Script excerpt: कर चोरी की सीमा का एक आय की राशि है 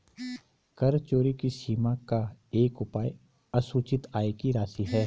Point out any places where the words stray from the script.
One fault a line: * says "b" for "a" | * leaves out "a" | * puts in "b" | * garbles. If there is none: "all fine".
* puts in "उपाय असूचित"